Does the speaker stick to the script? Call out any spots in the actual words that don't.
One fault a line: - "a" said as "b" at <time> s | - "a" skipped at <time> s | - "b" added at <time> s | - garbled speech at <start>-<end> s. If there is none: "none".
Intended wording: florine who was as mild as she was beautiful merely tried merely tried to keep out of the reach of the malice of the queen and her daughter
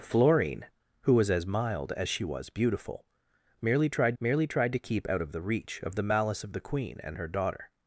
none